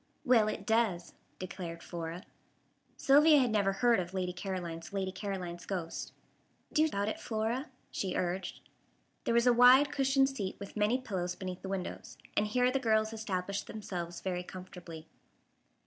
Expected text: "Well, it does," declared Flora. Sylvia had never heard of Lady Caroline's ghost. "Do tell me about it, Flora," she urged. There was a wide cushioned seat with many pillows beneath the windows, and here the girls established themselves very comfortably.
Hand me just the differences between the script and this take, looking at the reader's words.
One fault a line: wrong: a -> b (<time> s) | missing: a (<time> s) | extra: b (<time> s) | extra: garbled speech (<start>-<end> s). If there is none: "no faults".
extra: Lady Caroline's (4.9 s)
missing: tell me (6.9 s)